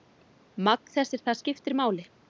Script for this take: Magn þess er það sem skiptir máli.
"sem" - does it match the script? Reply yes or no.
no